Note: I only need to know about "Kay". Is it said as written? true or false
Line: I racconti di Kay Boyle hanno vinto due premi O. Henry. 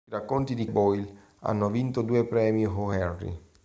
false